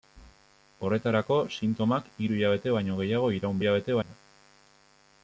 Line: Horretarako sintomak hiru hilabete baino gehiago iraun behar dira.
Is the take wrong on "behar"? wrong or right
wrong